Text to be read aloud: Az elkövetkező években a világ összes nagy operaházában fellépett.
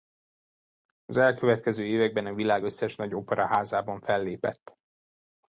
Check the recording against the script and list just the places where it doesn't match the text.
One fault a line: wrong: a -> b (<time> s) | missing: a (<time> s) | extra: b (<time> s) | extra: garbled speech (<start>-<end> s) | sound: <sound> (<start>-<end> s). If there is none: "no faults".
no faults